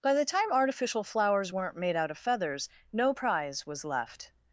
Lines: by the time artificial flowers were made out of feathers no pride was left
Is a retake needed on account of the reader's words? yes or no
yes